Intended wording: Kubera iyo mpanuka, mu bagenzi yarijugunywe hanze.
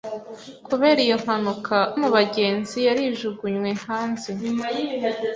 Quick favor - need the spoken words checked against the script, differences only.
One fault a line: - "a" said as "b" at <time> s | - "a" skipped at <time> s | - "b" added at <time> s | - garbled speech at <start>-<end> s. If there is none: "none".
none